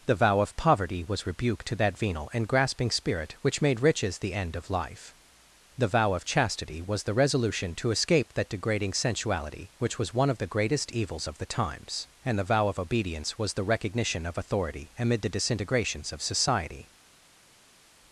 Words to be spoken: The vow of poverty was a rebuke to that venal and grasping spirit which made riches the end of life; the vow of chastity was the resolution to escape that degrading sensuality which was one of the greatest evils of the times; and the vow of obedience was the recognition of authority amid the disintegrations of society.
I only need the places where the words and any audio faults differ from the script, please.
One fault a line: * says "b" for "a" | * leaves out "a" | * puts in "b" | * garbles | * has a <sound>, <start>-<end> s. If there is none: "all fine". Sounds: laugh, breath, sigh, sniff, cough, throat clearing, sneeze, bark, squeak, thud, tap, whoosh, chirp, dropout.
* leaves out "a"